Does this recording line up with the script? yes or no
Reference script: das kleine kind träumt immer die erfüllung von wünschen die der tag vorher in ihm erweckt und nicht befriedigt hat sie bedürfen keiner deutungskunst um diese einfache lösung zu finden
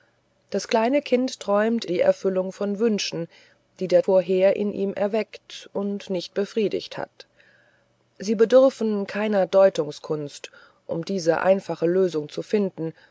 no